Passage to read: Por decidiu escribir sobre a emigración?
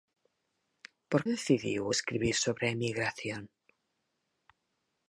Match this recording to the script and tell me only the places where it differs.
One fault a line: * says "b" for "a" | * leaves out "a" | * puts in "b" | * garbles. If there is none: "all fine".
all fine